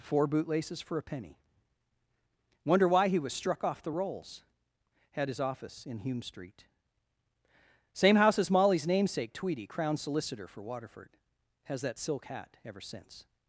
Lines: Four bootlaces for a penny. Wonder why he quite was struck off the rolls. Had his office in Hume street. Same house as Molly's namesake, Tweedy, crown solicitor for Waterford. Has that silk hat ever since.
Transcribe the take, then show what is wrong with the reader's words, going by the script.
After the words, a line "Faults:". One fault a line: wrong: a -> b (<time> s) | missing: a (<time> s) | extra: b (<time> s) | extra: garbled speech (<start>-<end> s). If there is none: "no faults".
Four bootlaces for a penny. Wonder why he was struck off the rolls. Had his office in Hume street. Same house as Molly's namesake, Tweedy, crown solicitor for Waterford. Has that silk hat ever since.
Faults:
missing: quite (3.2 s)